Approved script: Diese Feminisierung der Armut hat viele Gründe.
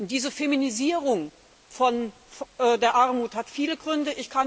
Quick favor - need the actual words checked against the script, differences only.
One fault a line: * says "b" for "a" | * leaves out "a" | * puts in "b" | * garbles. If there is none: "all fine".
all fine